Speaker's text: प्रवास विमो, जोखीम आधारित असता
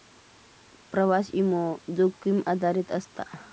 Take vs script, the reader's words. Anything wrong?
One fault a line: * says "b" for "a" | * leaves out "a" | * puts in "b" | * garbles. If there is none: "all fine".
all fine